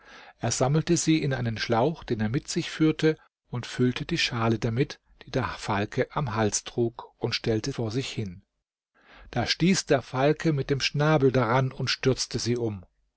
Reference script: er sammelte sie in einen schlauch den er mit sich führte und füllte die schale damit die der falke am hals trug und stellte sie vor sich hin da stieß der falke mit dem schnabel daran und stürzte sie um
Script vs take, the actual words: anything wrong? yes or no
yes